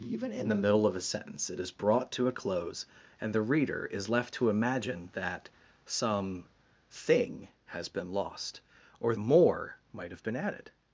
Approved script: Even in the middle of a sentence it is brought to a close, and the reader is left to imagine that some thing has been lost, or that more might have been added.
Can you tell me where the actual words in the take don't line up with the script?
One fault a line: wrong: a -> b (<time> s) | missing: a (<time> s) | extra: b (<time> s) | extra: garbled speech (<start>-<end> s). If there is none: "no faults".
missing: that (9.2 s)